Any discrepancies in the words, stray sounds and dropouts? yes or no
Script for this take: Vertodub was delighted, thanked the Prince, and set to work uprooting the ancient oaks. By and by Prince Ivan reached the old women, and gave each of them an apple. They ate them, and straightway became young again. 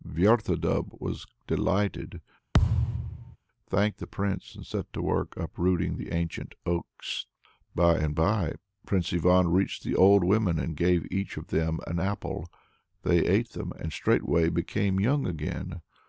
yes